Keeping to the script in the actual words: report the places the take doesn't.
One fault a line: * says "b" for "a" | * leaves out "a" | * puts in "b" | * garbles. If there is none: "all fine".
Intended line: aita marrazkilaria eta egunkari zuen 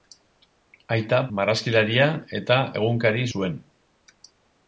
all fine